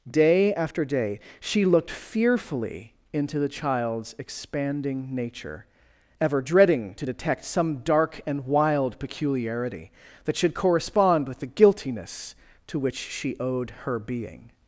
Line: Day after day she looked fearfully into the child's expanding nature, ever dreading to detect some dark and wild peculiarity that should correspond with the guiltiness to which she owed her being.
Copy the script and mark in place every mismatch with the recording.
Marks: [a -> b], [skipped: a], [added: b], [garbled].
Day after day she looked fearfully into the child's expanding nature, ever dreading to detect some dark and wild peculiarity that should correspond with the guiltiness to which she owed her being.